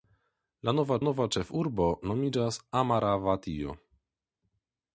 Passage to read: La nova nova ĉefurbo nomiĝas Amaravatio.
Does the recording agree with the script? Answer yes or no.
yes